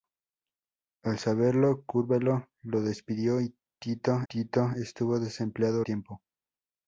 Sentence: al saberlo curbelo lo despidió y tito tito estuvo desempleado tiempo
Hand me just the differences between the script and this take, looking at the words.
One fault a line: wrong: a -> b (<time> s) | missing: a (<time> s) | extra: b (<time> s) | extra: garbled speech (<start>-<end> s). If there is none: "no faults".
no faults